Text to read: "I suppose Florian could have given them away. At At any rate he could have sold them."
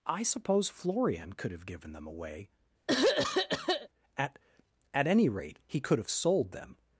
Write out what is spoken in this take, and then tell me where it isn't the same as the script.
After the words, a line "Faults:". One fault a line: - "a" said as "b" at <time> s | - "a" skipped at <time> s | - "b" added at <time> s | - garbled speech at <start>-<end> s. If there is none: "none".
"I suppose Florian could have given them away. At At any rate he could have sold them."
Faults:
none